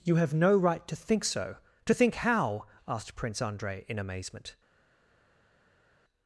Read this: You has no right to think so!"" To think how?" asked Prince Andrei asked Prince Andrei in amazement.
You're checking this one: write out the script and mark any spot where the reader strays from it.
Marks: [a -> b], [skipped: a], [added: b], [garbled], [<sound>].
You [has -> have] no right to think so!"" To think how?" asked Prince Andrei [skipped: asked Prince Andrei] in amazement.